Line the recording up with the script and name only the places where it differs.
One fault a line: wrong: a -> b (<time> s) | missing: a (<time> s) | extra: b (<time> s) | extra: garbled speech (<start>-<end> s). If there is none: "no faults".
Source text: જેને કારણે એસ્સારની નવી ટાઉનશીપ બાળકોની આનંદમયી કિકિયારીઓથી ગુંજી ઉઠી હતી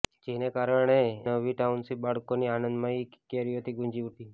missing: એસ્સારની (0.9 s)
missing: ઉઠી (4.1 s)